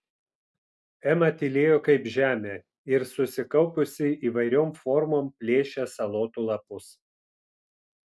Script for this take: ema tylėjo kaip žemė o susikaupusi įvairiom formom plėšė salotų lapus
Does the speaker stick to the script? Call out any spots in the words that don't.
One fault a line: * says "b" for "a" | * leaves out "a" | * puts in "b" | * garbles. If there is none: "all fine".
* says "ir" for "o"